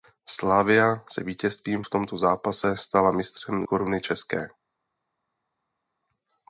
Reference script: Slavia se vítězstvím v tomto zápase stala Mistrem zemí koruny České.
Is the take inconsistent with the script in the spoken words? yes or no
yes